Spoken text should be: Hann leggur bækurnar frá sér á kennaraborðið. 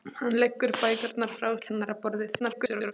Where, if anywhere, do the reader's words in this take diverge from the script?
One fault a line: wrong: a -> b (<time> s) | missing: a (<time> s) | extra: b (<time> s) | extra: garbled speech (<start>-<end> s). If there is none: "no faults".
missing: sér (1.5 s)
extra: garbled speech (2.4-2.9 s)